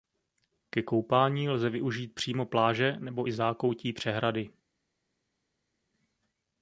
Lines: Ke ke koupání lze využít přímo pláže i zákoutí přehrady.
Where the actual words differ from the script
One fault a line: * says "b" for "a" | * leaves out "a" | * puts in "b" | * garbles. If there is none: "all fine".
* leaves out "ke"
* puts in "nebo"